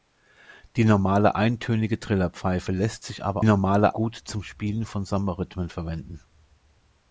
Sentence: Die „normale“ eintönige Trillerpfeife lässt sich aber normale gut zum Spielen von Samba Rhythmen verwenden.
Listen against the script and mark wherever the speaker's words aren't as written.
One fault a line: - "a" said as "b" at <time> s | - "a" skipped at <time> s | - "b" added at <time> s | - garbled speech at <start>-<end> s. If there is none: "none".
none